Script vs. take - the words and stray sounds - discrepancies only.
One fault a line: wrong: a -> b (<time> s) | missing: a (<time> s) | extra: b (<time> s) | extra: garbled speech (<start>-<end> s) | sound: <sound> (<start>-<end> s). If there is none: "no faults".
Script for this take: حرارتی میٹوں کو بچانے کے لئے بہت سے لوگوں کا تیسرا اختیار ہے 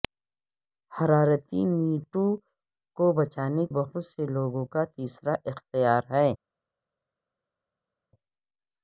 missing: کے لئے (3.7 s)